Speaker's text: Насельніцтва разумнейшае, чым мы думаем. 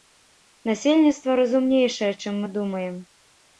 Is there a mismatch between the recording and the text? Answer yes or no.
no